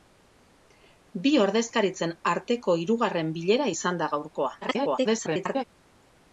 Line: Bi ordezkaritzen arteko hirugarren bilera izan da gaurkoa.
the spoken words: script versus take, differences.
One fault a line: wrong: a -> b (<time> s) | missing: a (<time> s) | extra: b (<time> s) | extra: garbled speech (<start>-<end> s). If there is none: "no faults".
extra: garbled speech (4.6-5.6 s)